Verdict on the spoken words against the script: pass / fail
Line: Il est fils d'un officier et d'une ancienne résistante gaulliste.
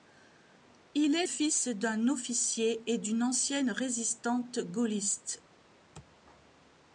pass